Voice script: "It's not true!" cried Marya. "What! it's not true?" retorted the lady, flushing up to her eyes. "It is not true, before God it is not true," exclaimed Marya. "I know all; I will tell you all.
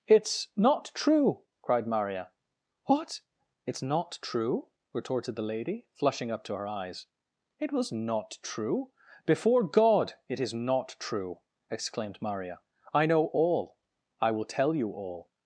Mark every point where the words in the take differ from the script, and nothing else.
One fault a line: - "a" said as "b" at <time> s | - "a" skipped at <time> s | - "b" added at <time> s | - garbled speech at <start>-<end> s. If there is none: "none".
- "is" said as "was" at 7.7 s